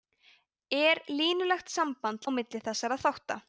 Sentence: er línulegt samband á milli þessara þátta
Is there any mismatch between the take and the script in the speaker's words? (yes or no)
no